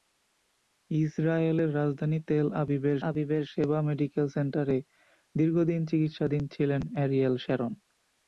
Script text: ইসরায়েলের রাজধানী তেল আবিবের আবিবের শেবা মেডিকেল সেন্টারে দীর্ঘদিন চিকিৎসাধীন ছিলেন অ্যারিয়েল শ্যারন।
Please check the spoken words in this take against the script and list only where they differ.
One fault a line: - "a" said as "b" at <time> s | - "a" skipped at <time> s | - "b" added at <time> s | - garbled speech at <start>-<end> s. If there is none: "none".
none